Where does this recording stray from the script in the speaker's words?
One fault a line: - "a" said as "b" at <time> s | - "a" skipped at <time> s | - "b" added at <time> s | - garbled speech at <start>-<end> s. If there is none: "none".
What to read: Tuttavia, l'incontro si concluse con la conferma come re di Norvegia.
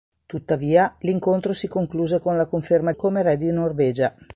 none